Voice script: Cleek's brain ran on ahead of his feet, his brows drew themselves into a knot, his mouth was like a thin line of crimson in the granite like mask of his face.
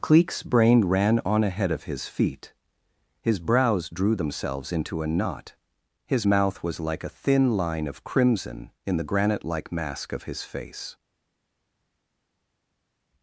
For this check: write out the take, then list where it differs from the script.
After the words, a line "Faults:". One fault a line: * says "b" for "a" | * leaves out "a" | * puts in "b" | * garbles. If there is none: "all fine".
Cleek's brain ran on ahead of his feet, his brows drew themselves into a knot, his mouth was like a thin line of crimson in the granite like mask of his face.
Faults:
all fine